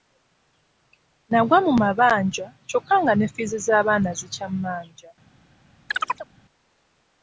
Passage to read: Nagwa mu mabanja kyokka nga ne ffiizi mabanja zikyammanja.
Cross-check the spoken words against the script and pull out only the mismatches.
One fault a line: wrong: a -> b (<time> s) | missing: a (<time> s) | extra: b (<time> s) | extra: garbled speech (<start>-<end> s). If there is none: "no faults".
wrong: mabanja -> z'abaana (3.7 s)